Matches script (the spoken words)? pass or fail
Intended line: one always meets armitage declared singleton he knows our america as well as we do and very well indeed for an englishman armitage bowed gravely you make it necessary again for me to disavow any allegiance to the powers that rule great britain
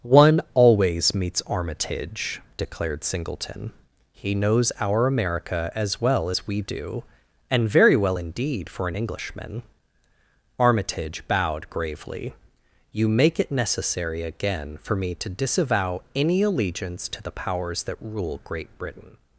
pass